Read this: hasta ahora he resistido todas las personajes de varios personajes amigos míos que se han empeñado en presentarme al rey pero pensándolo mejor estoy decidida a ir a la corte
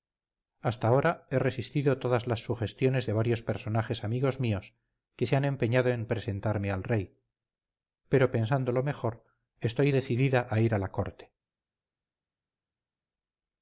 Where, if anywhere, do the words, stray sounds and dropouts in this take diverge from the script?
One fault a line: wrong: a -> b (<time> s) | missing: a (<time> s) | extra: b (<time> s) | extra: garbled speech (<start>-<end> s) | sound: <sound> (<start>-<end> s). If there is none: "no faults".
wrong: personajes -> sugestiones (2.4 s)